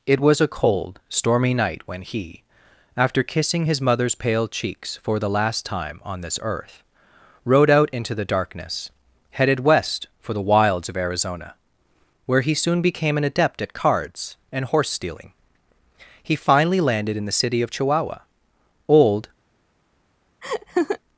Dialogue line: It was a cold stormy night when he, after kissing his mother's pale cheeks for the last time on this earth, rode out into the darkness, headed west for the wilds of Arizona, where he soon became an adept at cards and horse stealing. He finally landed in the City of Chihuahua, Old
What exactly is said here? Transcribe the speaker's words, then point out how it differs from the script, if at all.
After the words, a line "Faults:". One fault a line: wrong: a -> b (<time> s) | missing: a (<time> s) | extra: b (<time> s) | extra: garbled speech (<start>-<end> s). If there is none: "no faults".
It was a cold stormy night when he, after kissing his mother's pale cheeks for the last time on this earth, rode out into the darkness, headed west for the wilds of Arizona, where he soon became an adept at cards and horse stealing. He finally landed in the City of Chihuahua, Old
Faults:
no faults